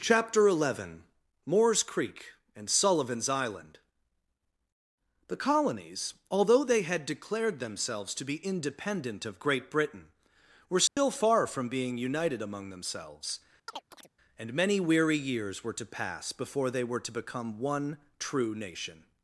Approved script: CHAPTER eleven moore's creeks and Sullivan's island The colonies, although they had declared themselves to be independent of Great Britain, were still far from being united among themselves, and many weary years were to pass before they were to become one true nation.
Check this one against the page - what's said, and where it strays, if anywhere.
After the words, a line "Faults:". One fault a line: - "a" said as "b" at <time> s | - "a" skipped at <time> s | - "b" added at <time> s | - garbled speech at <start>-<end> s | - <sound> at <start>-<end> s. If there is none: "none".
CHAPTER eleven moore's creek and Sullivan's island The colonies, although they had declared themselves to be independent of Great Britain, were still far from being united among themselves, and many weary years were to pass before they were to become one true nation.
Faults:
- "creeks" said as "creek" at 1.8 s
- dropout at 10.9-11.0 s
- chirp at 13.7-14.1 s